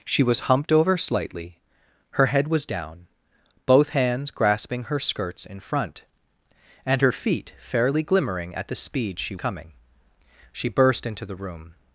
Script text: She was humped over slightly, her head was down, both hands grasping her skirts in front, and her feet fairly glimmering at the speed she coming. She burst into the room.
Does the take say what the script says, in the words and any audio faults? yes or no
yes